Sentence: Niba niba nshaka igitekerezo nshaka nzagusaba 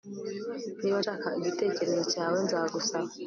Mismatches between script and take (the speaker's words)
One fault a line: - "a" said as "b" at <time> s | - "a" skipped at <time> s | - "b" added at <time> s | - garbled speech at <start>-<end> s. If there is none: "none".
- "niba" skipped at 1.0 s
- "nshaka" said as "cyawe" at 2.1 s